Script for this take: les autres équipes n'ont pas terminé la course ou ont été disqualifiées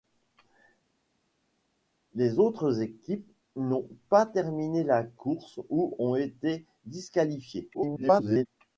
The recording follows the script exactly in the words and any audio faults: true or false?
false